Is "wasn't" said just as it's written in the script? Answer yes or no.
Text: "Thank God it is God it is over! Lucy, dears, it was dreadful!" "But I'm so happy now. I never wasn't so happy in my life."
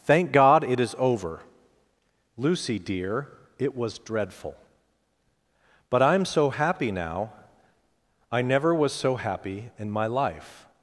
no